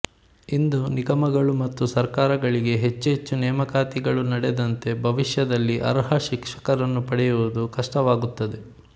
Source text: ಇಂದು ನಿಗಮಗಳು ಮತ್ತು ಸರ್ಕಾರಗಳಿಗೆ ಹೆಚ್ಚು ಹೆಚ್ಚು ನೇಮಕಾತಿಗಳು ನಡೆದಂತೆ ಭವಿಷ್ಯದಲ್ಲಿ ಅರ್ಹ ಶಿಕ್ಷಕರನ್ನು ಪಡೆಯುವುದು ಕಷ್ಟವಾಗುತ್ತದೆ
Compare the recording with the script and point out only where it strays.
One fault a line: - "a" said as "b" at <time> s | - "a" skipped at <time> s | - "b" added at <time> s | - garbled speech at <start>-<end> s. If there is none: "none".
none